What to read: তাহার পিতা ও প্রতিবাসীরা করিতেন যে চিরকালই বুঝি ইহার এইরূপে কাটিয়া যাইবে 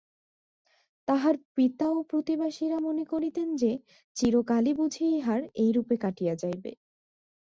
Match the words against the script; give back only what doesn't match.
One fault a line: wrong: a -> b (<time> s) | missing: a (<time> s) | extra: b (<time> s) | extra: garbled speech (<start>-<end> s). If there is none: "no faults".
extra: মনে (2.8 s)